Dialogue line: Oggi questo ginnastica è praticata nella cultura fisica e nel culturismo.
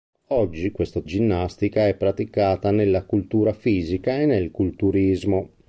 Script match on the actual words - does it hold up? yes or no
yes